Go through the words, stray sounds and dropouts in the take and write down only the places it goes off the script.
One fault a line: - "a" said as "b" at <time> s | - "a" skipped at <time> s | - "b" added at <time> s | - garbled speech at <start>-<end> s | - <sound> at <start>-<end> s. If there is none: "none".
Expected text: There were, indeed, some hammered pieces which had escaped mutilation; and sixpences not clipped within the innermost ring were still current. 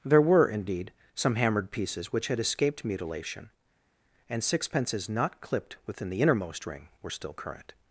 none